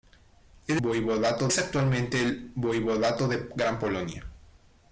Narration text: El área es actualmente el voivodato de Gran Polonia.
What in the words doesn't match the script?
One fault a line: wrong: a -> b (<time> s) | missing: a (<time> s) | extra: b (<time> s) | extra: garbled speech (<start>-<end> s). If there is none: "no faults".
wrong: área -> voivodato (0.8 s)